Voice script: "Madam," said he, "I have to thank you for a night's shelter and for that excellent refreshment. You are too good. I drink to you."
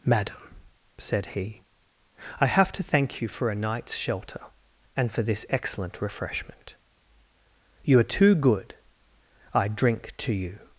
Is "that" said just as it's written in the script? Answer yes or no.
no